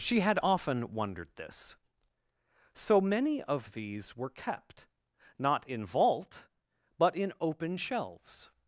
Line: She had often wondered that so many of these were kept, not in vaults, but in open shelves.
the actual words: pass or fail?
fail